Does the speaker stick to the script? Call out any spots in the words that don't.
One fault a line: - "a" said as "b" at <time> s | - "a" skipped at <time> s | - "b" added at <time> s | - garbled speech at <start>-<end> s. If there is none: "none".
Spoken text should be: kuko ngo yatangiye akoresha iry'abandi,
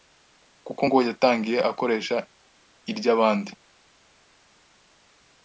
none